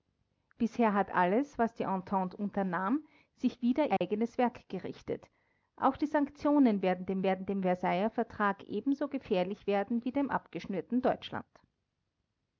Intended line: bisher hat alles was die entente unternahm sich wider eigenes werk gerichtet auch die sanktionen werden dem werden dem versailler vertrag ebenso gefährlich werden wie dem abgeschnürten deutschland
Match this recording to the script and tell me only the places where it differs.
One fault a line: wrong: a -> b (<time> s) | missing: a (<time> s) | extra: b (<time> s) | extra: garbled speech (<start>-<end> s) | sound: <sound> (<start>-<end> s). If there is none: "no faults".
sound: dropout (4.0-4.0 s)